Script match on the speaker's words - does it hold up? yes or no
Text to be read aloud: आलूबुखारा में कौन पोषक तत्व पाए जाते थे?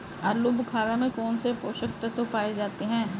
no